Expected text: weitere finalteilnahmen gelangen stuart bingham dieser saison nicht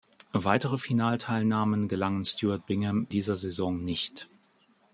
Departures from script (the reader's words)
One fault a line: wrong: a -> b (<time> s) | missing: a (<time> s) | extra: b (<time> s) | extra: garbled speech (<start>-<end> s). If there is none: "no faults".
no faults